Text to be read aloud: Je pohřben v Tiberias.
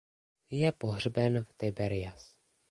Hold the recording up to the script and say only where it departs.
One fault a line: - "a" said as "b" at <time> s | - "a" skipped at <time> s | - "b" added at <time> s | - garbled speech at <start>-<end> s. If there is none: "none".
none